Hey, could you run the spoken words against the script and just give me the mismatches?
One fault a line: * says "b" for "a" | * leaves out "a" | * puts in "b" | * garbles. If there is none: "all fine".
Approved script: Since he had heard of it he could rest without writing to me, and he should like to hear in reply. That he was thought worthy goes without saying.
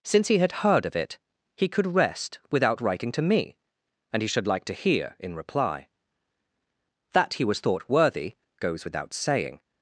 all fine